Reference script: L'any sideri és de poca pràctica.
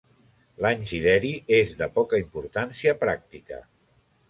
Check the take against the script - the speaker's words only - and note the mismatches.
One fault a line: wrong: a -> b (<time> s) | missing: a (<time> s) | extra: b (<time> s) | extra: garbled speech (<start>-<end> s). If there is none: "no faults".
extra: importància (2.3 s)